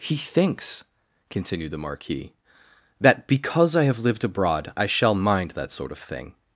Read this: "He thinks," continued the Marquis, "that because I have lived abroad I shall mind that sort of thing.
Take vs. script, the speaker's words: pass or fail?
pass